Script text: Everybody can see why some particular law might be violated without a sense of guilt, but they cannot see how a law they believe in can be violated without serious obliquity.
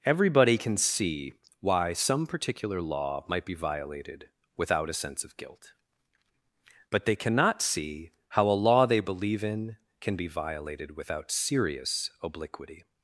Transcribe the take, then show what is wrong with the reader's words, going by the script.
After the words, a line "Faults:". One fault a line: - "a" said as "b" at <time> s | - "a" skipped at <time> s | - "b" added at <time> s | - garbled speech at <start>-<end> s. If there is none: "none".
Everybody can see why some particular law might be violated without a sense of guilt, but they cannot see how a law they believe in can be violated without serious obliquity.
Faults:
none